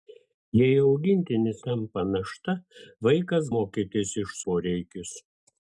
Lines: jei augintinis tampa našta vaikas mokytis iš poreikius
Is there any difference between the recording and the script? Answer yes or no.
no